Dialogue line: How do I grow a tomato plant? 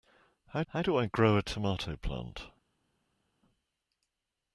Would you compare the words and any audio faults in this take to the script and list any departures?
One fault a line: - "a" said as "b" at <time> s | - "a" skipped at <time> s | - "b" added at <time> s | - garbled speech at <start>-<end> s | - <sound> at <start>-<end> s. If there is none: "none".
- "how" added at 0.7 s